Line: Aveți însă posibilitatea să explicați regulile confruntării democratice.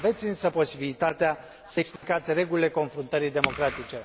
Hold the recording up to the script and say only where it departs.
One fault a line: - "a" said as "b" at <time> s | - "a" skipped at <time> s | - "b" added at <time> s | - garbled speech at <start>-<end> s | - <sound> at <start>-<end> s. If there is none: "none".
- dropout at 2.0-2.0 s